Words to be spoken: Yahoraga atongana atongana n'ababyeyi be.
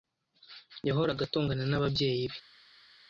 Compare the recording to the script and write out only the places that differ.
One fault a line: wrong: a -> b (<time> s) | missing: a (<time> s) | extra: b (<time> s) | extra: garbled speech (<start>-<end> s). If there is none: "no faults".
missing: atongana (1.6 s)